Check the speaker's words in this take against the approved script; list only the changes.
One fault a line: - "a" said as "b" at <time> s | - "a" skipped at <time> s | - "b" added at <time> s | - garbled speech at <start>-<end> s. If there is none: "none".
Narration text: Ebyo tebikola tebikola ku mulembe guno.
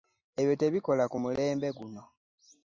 - "tebikola" skipped at 1.0 s